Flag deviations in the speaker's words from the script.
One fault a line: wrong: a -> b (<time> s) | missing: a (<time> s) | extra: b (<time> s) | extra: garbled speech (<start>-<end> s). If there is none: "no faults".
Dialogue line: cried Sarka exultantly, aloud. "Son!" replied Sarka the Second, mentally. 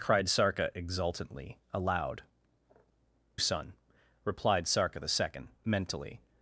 no faults